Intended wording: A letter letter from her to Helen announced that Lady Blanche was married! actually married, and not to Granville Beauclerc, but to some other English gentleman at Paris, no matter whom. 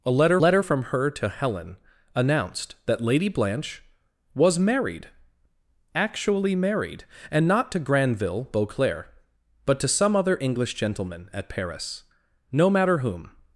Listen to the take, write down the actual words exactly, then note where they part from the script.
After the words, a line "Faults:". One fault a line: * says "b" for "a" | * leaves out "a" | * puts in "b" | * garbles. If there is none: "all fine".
A letter letter from her to Helen announced that Lady Blanche was married! actually married, and not to Granville Beauclerc, but to some other English gentleman at Paris, no matter whom.
Faults:
all fine